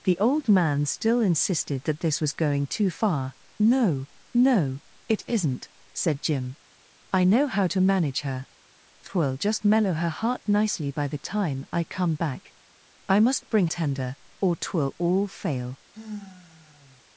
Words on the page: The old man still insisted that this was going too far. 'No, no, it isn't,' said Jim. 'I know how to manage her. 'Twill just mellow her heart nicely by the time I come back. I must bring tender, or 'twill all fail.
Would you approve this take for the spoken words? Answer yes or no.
yes